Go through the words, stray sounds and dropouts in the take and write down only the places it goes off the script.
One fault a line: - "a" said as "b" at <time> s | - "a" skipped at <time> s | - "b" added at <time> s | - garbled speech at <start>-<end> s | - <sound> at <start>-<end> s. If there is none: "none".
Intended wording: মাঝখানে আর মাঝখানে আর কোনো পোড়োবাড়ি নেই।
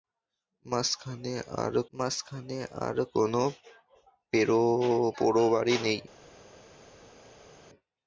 none